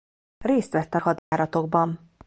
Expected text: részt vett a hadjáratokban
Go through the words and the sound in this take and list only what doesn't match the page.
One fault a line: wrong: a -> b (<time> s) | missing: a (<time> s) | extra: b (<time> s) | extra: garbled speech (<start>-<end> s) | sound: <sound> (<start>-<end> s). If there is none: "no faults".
sound: dropout (1.2-1.3 s)